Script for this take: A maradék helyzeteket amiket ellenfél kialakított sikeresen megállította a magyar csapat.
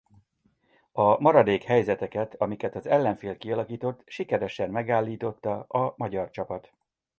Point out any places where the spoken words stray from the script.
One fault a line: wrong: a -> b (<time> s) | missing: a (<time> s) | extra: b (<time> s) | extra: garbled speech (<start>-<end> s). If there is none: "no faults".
extra: az (2.8 s)